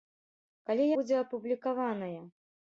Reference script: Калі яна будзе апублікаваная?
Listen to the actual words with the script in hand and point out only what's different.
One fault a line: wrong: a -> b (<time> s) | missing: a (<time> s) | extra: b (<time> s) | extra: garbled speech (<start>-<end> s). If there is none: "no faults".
missing: яна (0.9 s)